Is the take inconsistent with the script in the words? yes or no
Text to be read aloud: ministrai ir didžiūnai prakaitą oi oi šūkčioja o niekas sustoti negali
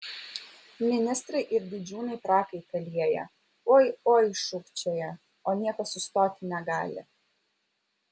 yes